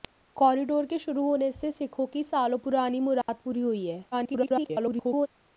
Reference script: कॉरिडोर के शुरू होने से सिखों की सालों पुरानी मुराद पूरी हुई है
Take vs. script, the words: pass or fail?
fail